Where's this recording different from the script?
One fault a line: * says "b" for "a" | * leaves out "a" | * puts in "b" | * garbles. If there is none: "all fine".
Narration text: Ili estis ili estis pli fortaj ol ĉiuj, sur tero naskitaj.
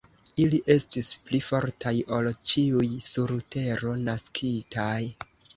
* leaves out "ili estis"